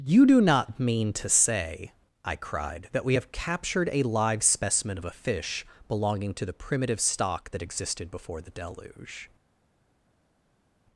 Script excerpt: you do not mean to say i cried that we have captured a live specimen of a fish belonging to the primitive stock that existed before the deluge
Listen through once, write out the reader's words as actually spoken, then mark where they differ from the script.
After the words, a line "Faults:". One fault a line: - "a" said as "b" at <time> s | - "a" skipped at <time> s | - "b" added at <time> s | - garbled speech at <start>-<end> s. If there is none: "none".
you do not mean to say i cried that we have captured a live specimen of a fish belonging to the primitive stock that existed before the deluge
Faults:
none